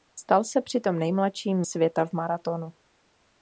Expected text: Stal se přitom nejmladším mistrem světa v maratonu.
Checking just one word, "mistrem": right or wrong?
wrong